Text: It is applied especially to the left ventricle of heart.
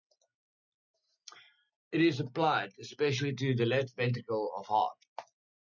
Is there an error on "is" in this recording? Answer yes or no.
no